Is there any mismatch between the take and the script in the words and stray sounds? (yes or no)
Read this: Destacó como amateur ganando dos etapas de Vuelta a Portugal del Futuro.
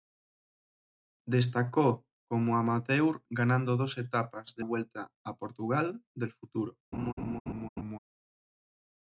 yes